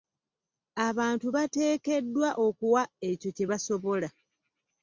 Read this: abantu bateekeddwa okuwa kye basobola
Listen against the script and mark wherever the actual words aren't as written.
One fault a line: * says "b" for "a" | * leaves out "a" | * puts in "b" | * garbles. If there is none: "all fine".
* puts in "ekyo"